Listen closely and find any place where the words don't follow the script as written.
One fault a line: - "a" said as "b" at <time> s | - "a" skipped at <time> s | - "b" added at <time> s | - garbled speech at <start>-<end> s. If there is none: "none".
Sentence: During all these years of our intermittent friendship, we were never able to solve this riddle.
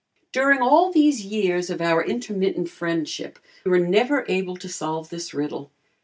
- "we" skipped at 3.4 s